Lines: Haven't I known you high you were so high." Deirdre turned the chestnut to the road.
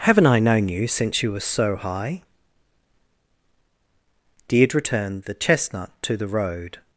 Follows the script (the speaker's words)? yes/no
no